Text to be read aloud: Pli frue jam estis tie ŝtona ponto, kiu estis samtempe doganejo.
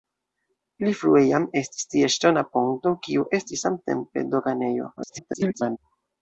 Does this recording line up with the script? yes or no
no